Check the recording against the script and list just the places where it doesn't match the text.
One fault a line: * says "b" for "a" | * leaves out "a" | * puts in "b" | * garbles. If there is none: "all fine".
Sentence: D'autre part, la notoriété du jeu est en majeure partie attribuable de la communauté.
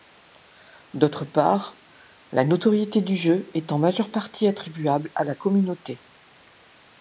* says "à" for "de"